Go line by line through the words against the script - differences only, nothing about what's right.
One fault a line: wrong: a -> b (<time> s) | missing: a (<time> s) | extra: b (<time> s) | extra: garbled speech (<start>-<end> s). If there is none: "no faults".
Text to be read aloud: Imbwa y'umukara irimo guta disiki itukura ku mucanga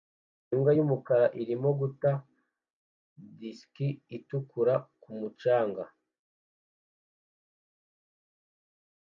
no faults